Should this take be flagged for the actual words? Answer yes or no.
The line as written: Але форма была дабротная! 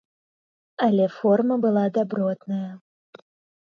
no